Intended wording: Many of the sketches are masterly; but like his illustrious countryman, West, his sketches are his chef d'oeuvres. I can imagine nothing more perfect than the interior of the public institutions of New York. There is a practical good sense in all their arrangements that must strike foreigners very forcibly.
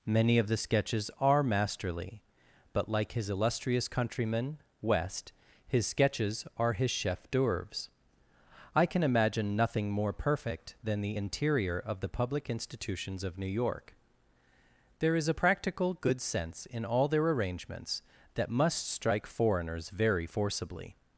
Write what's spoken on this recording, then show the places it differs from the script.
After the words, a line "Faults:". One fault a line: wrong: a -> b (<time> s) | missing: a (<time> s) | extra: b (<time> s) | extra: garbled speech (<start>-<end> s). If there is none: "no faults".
Many of the sketches are masterly; but like his illustrious countryman, West, his sketches are his chef d'oeuvres. I can imagine nothing more perfect than the interior of the public institutions of New York. There is a practical good sense in all their arrangements that must strike foreigners very forcibly.
Faults:
no faults